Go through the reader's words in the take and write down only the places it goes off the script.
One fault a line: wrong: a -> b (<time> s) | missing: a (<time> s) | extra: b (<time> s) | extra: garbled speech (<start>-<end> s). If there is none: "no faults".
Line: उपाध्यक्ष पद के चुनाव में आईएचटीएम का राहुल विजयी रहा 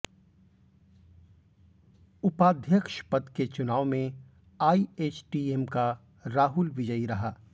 no faults